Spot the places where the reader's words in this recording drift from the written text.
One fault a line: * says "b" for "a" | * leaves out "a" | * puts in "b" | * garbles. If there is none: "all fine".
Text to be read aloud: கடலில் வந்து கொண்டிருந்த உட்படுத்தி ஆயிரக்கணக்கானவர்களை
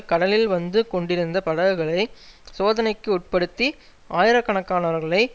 * puts in "படகுகளை சோதனைக்கு"